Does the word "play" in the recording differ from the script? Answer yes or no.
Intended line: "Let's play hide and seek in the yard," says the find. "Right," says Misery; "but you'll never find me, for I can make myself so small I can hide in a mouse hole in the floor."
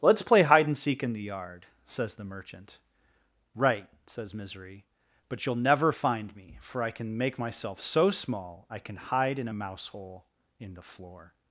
no